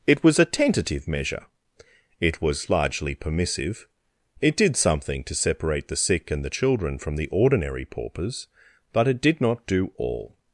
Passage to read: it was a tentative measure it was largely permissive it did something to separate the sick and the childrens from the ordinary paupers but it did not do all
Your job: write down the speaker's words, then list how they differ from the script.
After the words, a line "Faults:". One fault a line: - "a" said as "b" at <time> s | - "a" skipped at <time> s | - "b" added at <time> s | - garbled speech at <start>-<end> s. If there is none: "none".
it was a tentative measure it was largely permissive it did something to separate the sick and the children from the ordinary paupers but it did not do all
Faults:
- "childrens" said as "children" at 6.5 s